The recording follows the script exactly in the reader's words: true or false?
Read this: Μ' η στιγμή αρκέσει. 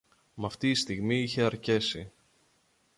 false